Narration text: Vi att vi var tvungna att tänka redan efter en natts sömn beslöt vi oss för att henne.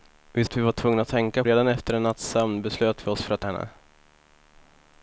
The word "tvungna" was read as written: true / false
true